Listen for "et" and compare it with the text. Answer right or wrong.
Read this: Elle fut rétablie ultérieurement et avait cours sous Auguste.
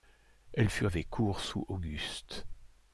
wrong